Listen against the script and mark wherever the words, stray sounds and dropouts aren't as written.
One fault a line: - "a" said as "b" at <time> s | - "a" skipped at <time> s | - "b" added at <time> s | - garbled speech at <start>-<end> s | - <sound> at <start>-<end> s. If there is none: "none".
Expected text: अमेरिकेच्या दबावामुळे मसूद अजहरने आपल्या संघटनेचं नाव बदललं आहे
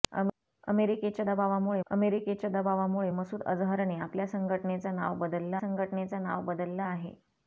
- "अमेरिकेच्या दबावामुळे" added at 1.9 s
- "संघटनेचं नाव बदललं" added at 5.6 s